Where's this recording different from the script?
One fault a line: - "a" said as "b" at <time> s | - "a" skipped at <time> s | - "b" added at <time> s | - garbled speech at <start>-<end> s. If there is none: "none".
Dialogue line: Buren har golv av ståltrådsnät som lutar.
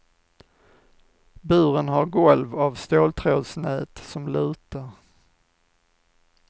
none